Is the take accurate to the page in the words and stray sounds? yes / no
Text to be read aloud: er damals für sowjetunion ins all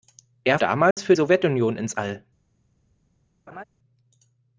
no